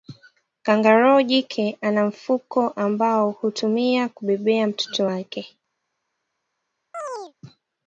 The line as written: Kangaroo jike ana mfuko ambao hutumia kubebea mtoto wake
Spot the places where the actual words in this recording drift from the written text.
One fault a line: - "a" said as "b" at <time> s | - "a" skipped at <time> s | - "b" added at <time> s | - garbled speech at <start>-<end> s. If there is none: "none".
none